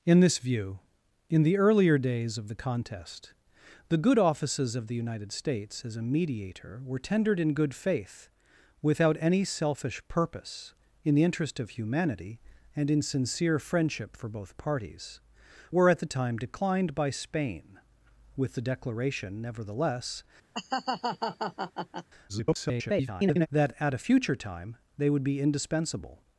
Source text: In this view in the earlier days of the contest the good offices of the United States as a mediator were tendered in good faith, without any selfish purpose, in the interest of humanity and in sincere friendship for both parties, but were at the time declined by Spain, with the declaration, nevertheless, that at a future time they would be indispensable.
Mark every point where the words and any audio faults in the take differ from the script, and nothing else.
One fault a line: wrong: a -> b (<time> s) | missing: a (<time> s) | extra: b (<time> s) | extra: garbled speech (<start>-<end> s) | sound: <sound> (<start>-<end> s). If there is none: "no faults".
missing: but (15.2 s)
sound: laugh (20.5-22.1 s)
extra: garbled speech (22.3-23.5 s)